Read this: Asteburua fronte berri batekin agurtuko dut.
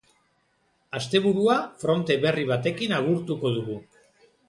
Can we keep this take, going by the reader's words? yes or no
no